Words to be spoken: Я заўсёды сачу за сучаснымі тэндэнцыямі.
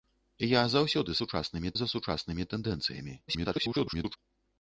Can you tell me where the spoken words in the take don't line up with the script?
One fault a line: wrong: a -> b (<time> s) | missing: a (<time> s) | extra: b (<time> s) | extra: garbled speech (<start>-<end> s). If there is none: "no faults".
wrong: сачу -> сучаснымі (1.2 s)
extra: garbled speech (3.3-4.2 s)